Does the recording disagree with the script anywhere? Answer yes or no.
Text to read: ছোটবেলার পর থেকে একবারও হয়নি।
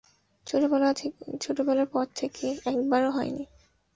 no